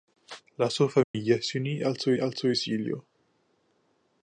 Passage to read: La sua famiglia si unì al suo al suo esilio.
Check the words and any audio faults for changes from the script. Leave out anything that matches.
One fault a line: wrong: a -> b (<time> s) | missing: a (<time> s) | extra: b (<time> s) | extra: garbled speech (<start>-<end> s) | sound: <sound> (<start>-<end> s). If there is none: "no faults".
sound: dropout (1.0-1.1 s)